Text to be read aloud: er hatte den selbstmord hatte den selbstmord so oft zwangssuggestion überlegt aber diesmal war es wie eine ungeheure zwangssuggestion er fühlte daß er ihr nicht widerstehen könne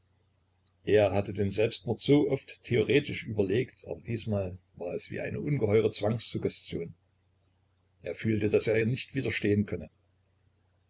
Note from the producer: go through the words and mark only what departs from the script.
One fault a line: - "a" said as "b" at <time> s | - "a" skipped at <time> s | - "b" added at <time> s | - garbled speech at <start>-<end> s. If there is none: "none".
- "hatte den selbstmord" skipped at 2.0 s
- "zwangssuggestion" said as "theoretisch" at 2.6 s